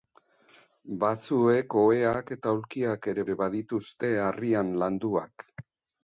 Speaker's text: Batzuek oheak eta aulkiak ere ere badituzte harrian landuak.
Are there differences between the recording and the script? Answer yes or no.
no